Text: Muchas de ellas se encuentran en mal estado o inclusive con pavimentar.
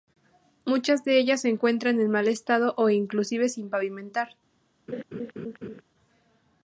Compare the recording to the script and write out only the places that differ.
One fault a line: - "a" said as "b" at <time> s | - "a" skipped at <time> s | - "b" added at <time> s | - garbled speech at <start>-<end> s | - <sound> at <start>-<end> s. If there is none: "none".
- "con" said as "sin" at 3.5 s
- laugh at 4.9-5.8 s